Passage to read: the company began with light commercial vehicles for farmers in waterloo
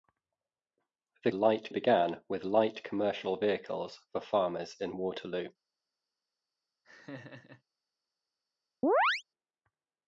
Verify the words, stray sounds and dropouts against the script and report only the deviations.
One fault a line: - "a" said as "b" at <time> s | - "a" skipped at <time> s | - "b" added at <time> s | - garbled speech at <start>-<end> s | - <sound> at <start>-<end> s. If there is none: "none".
- "company" said as "light" at 1.3 s
- laugh at 6.8-7.6 s
- chirp at 8.8-9.2 s